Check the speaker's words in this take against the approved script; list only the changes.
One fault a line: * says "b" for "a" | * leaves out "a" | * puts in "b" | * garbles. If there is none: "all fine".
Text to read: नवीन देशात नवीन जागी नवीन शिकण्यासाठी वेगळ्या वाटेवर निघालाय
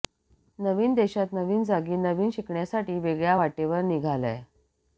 all fine